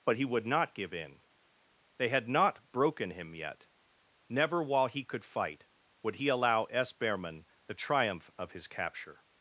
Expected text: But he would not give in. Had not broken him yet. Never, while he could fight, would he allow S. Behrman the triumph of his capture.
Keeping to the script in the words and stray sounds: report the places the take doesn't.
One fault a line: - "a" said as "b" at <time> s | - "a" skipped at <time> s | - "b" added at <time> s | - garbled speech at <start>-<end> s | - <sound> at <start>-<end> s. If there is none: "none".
- "They" added at 2.0 s